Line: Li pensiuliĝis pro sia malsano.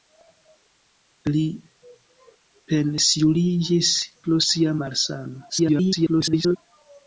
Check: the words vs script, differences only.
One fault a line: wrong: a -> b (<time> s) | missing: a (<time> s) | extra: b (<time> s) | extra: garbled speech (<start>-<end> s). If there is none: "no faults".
extra: garbled speech (5.5-6.6 s)